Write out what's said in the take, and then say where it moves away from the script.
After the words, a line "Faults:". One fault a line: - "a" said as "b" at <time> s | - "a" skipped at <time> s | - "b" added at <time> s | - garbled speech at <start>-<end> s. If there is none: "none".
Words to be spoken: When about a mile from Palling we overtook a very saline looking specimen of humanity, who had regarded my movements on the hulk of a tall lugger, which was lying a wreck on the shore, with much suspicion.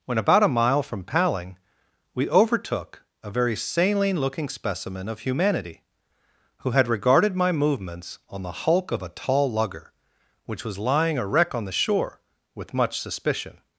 When about a mile from Palling we overtook a very saline looking specimen of humanity, who had regarded my movements on the hulk of a tall lugger, which was lying a wreck on the shore, with much suspicion.
Faults:
none